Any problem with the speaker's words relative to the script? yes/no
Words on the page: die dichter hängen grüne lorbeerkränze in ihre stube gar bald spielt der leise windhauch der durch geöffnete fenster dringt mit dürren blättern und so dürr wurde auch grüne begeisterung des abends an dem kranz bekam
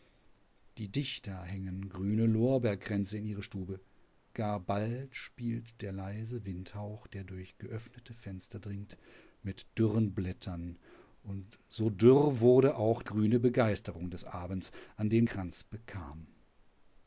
no